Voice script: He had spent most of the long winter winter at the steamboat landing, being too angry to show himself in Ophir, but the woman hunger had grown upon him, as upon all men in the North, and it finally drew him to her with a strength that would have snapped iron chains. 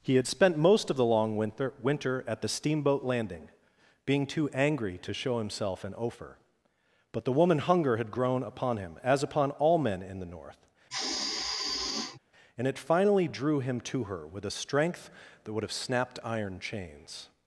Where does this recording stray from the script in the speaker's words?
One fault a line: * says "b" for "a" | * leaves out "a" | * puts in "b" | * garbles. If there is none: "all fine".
all fine